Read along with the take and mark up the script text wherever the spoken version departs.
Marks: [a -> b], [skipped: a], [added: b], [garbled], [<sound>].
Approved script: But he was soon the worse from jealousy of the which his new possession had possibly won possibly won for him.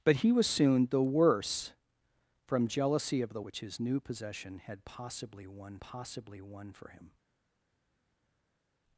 But he was soon the worse from jealousy of the which his new possession had possibly won possibly won for him.